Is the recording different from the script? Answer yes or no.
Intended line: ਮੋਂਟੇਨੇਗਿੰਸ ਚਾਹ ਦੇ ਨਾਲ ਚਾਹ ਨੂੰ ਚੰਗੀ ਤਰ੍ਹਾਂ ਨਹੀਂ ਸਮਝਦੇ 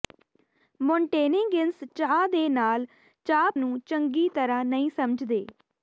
no